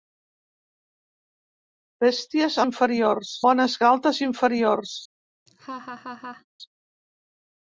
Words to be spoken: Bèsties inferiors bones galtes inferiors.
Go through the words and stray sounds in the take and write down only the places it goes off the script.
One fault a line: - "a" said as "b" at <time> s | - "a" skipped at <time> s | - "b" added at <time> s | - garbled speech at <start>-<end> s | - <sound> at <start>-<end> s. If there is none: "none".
- laugh at 5.5-6.5 s